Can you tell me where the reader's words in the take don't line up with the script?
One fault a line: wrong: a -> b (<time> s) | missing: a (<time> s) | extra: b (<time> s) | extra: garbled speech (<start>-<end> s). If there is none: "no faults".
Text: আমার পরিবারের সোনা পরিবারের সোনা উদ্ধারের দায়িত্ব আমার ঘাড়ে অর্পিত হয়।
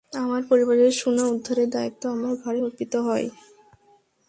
missing: পরিবারের সোনা (1.2 s)